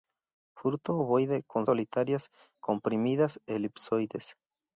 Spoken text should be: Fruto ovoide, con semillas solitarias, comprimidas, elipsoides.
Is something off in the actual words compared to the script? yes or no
yes